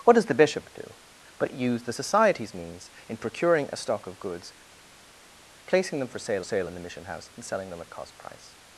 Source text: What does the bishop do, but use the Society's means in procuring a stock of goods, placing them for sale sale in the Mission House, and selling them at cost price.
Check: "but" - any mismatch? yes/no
no